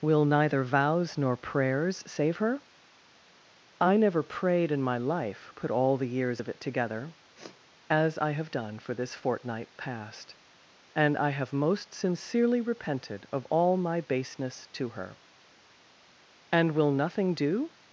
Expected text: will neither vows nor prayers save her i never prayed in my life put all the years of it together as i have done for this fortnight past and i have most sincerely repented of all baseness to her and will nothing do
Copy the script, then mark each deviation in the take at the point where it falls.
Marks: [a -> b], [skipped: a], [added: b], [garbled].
will neither vows nor prayers save her i never prayed in my life put all the years of it together as i have done for this fortnight past and i have most sincerely repented of all [added: my] baseness to her and will nothing do